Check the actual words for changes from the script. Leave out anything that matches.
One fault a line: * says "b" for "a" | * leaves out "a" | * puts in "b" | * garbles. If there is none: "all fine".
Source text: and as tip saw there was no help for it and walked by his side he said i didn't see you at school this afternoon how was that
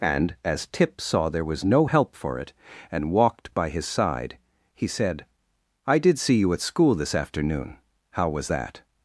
* says "did" for "didn't"